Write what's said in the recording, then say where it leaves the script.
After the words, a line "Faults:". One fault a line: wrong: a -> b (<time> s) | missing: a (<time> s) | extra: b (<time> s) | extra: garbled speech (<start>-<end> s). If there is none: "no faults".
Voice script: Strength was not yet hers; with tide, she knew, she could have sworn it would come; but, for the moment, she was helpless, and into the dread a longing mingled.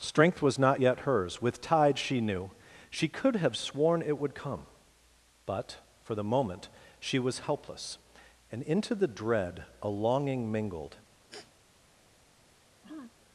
Strength was not yet hers; with tide, she knew, she could have sworn it would come; but, for the moment, she was helpless, and into the dread a longing mingled.
Faults:
no faults